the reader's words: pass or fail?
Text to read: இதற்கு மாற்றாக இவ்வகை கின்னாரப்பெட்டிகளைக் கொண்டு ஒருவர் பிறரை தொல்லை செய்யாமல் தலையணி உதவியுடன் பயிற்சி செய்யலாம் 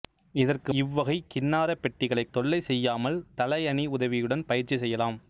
fail